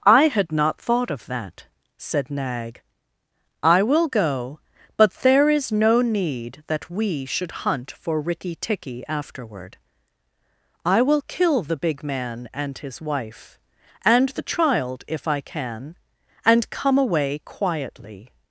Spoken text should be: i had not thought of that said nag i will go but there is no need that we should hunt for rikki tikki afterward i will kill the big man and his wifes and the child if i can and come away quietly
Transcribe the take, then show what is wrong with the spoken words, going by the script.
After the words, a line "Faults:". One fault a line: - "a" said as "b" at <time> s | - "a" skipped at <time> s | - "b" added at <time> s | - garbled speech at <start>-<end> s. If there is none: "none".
i had not thought of that said nag i will go but there is no need that we should hunt for rikki tikki afterward i will kill the big man and his wife and the child if i can and come away quietly
Faults:
- "wifes" said as "wife" at 13.0 s